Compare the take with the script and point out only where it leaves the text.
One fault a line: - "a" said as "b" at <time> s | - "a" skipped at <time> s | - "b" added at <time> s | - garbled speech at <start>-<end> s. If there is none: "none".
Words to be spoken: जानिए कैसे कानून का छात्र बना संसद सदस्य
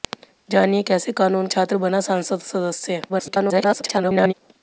- "का" skipped at 1.5 s
- garbled speech at 3.1-4.3 s